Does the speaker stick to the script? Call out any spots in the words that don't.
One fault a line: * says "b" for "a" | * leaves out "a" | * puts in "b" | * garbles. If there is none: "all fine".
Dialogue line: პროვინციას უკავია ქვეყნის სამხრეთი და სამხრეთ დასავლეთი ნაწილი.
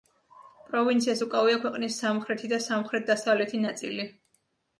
all fine